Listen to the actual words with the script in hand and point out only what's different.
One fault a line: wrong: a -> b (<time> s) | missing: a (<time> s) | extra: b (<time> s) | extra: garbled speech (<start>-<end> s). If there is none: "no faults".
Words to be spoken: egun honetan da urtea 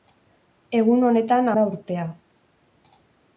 no faults